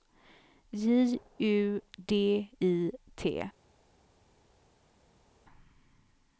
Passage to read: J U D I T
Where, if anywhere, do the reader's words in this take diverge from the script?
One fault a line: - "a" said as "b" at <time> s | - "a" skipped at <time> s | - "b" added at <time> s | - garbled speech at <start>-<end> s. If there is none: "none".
none